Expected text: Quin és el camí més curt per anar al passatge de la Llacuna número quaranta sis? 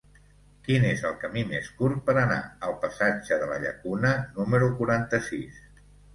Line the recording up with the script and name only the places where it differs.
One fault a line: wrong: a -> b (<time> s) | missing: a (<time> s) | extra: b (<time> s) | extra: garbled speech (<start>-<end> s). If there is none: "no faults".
no faults